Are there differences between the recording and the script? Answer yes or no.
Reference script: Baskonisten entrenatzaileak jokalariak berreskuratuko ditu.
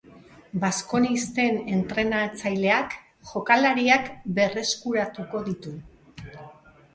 no